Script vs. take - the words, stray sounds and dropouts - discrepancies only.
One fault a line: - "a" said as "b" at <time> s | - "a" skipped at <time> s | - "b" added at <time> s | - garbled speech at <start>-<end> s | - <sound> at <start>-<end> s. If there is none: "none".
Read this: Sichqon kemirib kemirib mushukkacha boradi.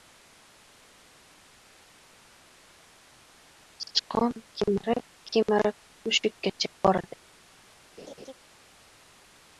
- laugh at 8.0-8.3 s